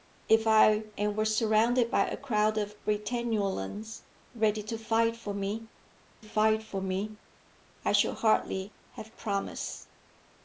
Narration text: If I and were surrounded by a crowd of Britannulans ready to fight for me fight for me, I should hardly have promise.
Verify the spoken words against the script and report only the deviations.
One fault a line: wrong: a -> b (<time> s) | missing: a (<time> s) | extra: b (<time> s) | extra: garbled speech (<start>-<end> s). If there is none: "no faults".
no faults